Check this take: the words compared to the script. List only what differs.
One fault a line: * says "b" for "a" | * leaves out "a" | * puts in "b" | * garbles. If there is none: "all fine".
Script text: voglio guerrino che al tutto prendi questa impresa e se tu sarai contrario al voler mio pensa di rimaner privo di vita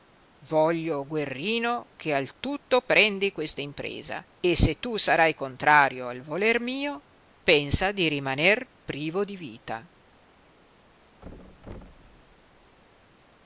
all fine